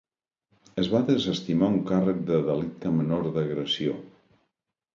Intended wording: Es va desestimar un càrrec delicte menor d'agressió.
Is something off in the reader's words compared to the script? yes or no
yes